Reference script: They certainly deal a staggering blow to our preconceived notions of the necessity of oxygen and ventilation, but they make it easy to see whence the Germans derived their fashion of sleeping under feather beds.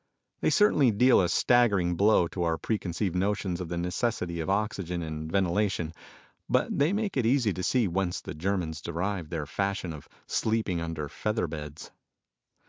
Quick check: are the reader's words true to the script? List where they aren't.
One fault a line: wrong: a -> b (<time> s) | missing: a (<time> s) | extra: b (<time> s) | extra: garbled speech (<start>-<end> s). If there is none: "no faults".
no faults